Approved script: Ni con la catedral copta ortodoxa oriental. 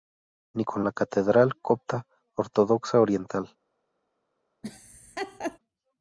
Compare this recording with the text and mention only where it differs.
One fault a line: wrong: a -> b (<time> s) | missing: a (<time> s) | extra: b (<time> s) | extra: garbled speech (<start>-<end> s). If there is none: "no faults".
no faults